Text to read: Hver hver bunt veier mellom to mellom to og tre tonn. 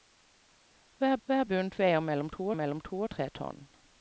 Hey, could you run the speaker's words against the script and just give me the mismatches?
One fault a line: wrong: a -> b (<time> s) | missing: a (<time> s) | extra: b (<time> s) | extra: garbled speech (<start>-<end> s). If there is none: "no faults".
no faults